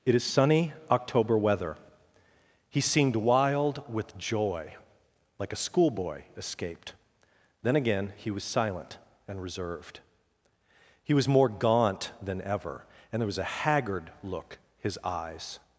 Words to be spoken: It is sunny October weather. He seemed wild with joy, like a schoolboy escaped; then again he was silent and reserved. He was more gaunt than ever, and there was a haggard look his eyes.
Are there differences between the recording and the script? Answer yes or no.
no